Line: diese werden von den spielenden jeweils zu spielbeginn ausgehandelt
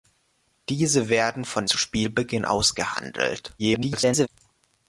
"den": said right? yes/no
no